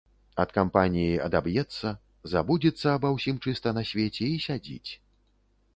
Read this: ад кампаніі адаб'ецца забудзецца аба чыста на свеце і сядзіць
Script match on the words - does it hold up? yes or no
no